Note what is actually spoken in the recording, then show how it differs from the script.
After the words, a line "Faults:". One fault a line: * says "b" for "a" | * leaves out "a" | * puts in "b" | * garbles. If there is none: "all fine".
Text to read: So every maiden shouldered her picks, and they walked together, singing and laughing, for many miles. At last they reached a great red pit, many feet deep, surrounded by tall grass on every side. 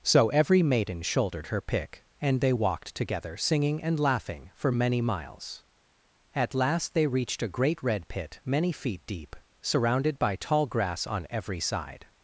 So every maiden shouldered her pick, and they walked together, singing and laughing, for many miles. At last they reached a great red pit, many feet deep, surrounded by tall grass on every side.
Faults:
* says "pick" for "picks"